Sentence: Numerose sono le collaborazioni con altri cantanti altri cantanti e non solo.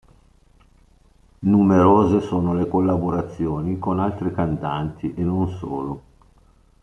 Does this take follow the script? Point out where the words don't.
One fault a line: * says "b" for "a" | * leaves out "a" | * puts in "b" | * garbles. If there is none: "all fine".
* leaves out "altri cantanti"